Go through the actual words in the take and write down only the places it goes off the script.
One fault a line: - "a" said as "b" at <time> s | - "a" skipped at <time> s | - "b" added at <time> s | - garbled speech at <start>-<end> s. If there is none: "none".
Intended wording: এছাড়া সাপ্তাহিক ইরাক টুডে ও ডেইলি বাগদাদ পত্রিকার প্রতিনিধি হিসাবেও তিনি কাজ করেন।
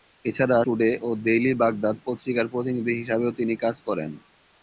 - "সাপ্তাহিক ইরাক" skipped at 0.6 s